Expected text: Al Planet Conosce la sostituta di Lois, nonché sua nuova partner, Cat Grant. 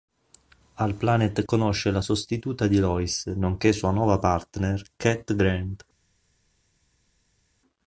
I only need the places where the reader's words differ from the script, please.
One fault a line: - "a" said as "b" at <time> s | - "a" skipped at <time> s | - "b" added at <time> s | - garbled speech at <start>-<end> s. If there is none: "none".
none